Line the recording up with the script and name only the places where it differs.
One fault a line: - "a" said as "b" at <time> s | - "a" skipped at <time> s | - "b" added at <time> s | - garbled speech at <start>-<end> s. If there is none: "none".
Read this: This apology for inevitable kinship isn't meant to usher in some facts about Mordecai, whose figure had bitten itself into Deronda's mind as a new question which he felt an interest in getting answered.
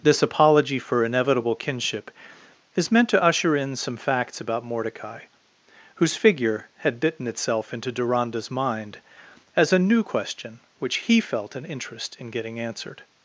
- "isn't" said as "is" at 2.8 s